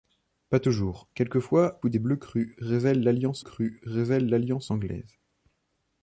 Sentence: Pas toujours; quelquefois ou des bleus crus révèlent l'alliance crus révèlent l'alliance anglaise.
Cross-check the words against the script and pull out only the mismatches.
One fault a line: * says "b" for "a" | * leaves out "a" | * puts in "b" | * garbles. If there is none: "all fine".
all fine